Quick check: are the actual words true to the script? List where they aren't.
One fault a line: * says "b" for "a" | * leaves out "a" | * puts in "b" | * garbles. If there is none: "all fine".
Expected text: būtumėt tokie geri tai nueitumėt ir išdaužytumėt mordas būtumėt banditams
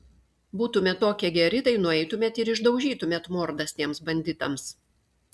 * says "tiems" for "būtumėt"